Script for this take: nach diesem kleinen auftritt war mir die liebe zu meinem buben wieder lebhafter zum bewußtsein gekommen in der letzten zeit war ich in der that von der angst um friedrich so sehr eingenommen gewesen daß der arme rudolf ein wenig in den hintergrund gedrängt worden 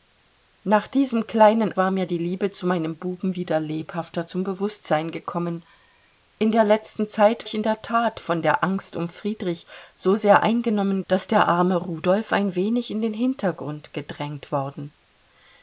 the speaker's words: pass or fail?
fail